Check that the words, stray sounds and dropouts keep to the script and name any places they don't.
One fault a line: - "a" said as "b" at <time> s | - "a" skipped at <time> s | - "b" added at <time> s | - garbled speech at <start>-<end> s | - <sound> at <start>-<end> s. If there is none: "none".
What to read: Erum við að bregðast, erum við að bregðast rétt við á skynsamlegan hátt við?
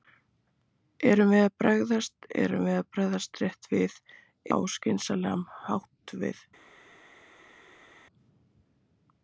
none